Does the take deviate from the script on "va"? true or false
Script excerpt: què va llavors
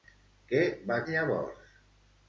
false